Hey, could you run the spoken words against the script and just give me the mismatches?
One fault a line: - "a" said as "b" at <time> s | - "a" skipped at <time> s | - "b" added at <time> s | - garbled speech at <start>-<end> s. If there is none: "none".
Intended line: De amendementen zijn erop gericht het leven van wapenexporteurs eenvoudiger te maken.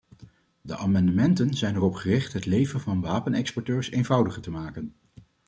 none